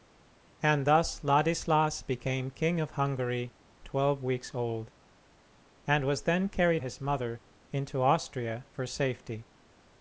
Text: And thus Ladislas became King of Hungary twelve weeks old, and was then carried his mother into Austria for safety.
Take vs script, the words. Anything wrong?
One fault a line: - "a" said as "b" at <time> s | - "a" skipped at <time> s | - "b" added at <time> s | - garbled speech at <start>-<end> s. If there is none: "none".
none